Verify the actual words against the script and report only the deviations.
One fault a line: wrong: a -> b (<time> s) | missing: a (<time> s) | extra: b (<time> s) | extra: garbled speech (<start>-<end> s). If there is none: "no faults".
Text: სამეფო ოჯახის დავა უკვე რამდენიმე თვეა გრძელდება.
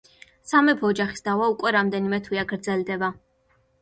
no faults